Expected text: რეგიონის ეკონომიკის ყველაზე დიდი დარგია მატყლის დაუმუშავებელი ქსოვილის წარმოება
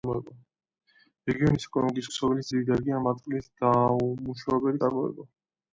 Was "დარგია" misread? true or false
false